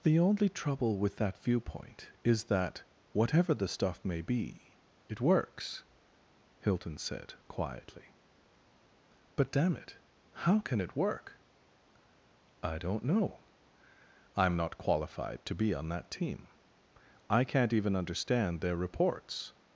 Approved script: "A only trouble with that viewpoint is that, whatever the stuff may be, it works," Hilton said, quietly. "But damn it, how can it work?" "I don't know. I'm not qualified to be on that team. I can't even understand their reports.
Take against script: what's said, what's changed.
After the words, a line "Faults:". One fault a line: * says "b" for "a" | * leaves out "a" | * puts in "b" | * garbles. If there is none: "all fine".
"The only trouble with that viewpoint is that, whatever the stuff may be, it works," Hilton said, quietly. "But damn it, how can it work?" "I don't know. I'm not qualified to be on that team. I can't even understand their reports.
Faults:
* says "The" for "A"